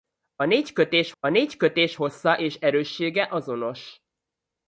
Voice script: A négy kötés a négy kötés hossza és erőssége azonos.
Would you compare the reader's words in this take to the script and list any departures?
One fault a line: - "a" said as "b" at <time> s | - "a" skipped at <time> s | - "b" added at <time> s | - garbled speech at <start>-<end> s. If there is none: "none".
none